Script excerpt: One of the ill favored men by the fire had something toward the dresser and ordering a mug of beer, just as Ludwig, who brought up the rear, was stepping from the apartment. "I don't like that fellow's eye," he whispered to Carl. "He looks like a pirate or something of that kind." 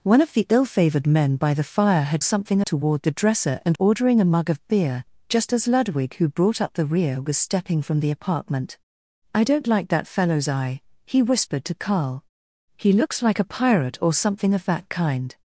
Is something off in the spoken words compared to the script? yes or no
no